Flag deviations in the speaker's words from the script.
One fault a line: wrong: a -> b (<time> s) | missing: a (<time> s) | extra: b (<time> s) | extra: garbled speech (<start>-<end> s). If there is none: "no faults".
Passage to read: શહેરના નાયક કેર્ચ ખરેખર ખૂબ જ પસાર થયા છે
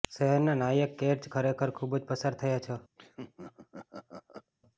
no faults